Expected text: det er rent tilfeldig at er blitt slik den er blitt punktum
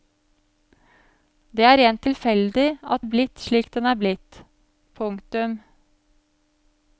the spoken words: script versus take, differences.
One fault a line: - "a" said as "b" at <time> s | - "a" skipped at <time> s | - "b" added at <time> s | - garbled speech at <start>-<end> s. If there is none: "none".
none